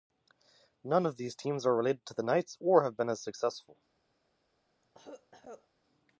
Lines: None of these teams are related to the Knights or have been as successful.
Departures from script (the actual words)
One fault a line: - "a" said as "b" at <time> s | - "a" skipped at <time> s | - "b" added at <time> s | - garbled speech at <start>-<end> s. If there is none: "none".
none